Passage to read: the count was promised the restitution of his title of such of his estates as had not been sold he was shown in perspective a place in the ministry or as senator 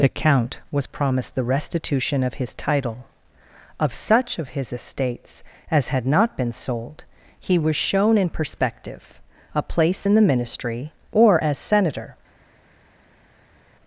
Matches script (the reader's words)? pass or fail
pass